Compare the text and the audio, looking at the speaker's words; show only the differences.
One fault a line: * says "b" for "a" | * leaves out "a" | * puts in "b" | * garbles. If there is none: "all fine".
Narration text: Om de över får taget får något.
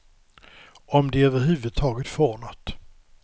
* says "huvud" for "får"